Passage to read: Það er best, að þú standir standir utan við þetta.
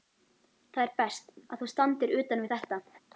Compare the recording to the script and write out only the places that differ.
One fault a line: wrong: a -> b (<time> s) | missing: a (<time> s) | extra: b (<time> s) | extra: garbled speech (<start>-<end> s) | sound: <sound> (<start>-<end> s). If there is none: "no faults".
missing: standir (2.2 s)